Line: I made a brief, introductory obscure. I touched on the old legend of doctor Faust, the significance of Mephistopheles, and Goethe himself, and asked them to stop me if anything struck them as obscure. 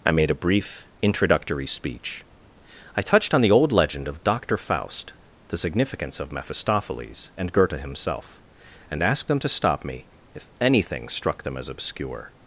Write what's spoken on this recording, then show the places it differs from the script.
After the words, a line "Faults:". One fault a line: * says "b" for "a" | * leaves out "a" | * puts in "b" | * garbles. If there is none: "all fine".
I made a brief, introductory speech. I touched on the old legend of doctor Faust, the significance of Mephistopheles, and Goethe himself, and asked them to stop me if anything struck them as obscure.
Faults:
* says "speech" for "obscure"